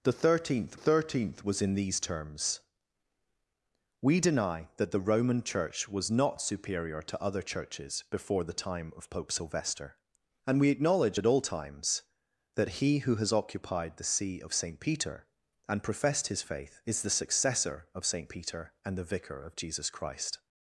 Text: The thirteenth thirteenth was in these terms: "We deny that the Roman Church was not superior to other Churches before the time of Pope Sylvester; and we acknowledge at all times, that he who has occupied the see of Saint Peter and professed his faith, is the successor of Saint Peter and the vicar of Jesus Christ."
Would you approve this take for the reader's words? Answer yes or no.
yes